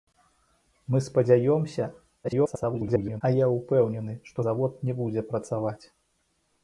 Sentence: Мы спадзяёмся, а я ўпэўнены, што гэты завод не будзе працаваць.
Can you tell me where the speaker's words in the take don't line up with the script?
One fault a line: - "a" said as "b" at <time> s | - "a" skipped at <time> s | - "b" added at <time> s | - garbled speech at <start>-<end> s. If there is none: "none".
- garbled speech at 2.2-3.2 s
- "гэты" skipped at 4.4 s